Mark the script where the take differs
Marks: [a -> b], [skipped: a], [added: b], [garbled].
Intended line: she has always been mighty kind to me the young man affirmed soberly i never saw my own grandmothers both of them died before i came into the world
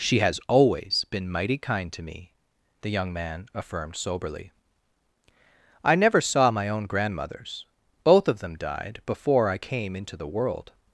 she has always been mighty kind to me the young man affirmed soberly i never saw my own grandmothers both of them died before i came into the world